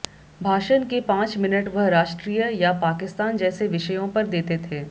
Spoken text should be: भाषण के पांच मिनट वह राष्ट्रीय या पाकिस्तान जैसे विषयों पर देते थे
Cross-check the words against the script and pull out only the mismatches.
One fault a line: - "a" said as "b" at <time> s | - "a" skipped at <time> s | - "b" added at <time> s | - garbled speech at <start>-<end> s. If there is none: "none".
none